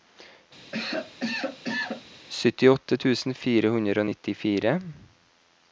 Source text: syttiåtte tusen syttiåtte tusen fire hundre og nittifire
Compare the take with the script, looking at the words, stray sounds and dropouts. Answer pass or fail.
fail